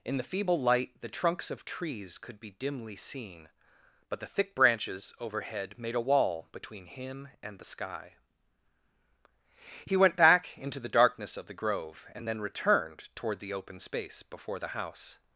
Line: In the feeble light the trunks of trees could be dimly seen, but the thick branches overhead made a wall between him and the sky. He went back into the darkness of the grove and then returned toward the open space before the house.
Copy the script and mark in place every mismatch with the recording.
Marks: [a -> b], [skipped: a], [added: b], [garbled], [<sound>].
In the feeble light the trunks of trees could be dimly seen, but the thick branches overhead made a wall between him and the sky. He went back into the darkness of the grove and then returned toward the open space before the house.